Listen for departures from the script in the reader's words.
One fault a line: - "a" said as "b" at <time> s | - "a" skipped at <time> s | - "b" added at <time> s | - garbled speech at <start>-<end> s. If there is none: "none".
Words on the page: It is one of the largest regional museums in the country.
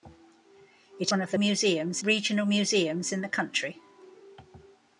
- "is" skipped at 1.1 s
- "largest" said as "museums" at 1.3 s